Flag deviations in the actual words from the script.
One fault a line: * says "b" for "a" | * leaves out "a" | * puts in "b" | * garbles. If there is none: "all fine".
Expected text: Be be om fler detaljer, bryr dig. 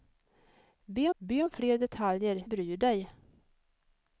all fine